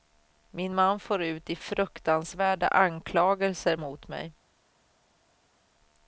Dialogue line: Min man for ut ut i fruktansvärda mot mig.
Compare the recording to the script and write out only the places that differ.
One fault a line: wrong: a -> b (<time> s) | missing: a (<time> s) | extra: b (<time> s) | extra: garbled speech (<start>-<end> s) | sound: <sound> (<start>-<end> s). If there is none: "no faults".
missing: ut (1.5 s)
extra: anklagelser (2.7 s)